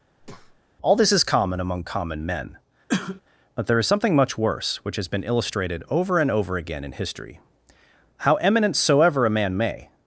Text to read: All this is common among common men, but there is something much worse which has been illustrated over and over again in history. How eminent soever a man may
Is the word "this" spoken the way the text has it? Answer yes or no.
yes